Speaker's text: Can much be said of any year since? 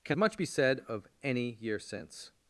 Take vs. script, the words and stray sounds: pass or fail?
pass